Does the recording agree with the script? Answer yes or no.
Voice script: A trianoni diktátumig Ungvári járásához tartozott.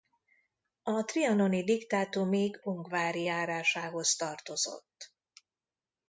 yes